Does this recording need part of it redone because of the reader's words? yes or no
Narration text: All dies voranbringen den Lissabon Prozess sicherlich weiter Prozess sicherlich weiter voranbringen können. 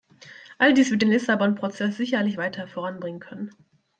yes